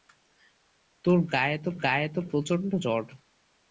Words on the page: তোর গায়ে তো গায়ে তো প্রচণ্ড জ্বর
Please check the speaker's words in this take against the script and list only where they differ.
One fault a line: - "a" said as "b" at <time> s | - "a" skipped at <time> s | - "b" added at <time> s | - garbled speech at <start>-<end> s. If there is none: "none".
none